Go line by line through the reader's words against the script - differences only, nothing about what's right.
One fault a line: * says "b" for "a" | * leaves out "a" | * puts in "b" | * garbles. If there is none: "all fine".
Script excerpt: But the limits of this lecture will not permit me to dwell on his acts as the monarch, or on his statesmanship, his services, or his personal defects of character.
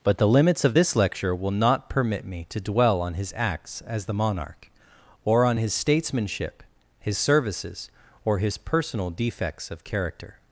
all fine